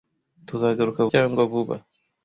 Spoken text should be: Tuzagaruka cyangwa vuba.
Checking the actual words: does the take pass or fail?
pass